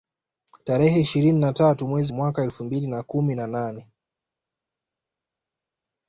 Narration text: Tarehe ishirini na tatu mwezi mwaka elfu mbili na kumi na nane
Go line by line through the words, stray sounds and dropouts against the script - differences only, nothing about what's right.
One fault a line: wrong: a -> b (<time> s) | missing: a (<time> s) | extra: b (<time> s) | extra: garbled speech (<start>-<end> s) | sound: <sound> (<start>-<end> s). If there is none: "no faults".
no faults